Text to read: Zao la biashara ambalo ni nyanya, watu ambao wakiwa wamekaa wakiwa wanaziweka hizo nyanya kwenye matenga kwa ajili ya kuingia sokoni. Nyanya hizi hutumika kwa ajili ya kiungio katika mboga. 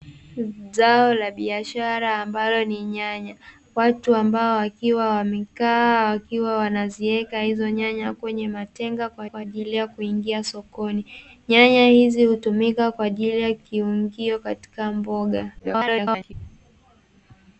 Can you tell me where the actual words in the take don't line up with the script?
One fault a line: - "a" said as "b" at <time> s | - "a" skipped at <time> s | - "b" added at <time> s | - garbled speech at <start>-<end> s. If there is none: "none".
- "kwa" added at 9.2 s
- garbled speech at 15.6-16.3 s